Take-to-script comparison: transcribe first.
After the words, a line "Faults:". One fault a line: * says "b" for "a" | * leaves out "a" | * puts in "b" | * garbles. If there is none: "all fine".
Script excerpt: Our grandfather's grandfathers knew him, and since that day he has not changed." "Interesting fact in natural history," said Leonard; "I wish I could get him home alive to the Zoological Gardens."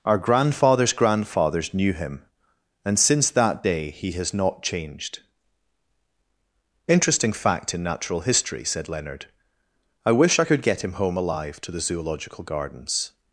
Our grandfather's grandfathers knew him, and since that day he has not changed." "Interesting fact in natural history," said Leonard; "I wish I could get him home alive to the Zoological Gardens."
Faults:
all fine